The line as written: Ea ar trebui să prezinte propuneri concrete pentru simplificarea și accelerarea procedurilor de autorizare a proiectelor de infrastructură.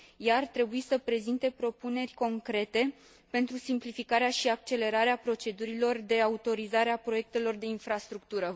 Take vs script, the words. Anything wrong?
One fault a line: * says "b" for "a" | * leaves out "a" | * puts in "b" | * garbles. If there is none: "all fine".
all fine